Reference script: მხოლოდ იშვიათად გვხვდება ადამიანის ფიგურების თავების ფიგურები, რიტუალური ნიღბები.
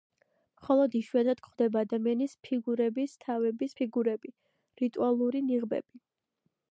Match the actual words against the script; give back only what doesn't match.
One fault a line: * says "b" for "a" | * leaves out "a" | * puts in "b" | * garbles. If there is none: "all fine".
all fine